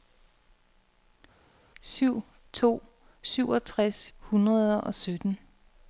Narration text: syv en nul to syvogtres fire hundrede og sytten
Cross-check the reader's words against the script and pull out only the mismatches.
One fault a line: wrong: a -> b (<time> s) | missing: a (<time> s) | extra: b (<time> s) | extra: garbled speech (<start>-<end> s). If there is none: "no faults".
missing: en nul (2.2 s)
missing: fire (4.1 s)